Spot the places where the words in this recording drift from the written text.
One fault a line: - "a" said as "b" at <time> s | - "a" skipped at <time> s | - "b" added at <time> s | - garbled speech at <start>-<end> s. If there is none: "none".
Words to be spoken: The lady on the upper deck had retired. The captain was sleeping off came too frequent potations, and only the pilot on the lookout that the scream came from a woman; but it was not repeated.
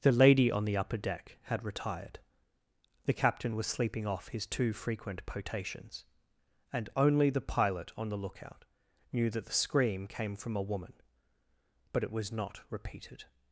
- "came" said as "his" at 4.3 s
- "knew" added at 9.1 s